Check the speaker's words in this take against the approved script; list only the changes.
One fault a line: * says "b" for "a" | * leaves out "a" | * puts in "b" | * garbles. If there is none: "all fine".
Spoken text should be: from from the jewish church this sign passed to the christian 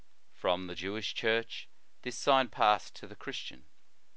* leaves out "from"